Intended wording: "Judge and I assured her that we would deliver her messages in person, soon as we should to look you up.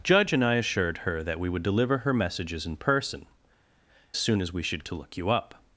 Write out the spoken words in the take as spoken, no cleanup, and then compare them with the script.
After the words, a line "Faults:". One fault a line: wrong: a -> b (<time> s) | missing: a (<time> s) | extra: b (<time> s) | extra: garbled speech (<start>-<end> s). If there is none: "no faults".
"Judge and I assured her that we would deliver her messages in person, soon as we should to look you up.
Faults:
no faults